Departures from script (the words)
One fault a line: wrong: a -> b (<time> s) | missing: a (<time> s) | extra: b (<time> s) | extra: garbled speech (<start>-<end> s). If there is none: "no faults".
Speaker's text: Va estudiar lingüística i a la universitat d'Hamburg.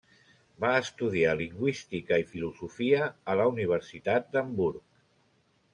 extra: filosofia (2.3 s)